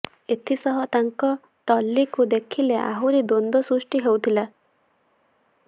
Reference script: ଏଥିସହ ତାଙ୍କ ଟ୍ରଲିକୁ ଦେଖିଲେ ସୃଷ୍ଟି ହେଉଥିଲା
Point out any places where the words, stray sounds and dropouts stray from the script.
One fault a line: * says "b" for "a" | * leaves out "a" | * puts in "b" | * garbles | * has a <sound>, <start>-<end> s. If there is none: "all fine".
* puts in "ଆହୁରି ଦ୍ୱନ୍ଦ୍ୱ"